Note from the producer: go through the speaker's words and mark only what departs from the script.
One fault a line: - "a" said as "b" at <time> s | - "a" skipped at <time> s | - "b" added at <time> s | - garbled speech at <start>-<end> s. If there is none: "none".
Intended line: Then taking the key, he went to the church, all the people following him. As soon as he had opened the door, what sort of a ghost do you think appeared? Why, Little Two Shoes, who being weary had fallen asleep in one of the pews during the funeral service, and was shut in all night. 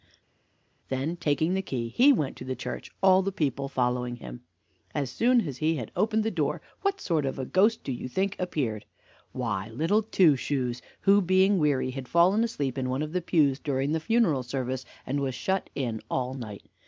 none